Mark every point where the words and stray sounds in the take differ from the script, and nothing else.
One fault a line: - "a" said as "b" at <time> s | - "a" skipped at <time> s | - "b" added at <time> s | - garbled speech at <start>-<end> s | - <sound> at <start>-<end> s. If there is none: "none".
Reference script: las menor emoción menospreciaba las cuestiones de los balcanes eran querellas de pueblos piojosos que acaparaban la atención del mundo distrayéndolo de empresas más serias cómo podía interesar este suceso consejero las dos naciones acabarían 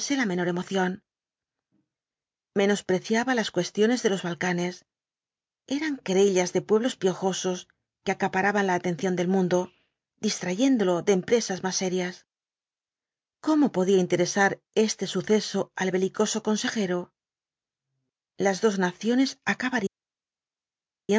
- "las" said as "la" at 0.1 s
- "al belicoso" added at 15.7 s